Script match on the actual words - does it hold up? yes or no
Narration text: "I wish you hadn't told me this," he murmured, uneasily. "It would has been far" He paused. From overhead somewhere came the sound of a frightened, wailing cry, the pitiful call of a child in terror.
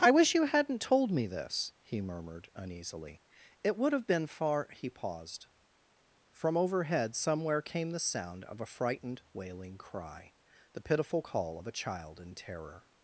no